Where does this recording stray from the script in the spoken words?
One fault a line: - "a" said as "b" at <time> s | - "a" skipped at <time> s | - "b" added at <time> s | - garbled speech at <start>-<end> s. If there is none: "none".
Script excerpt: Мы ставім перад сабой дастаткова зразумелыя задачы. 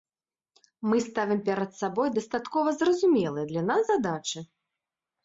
- "для нас" added at 3.5 s